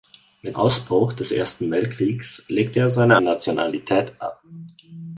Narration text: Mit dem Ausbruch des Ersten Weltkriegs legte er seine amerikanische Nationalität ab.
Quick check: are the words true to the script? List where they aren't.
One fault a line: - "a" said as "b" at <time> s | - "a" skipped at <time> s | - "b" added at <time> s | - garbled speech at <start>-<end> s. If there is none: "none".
- "dem" skipped at 0.6 s
- "amerikanische" skipped at 3.2 s